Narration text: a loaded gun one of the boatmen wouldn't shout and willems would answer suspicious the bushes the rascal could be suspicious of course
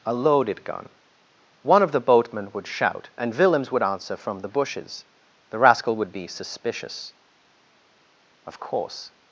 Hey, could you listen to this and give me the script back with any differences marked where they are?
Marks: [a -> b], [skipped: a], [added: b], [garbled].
a loaded gun one of the boatmen [wouldn't -> would] shout and willems would answer [suspicious -> from] the bushes the rascal [could -> would] be suspicious of course